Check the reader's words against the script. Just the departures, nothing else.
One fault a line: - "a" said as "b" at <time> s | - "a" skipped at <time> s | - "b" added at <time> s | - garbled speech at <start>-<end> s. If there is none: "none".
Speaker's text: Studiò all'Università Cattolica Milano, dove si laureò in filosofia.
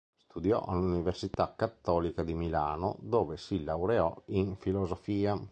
- "di" added at 2.2 s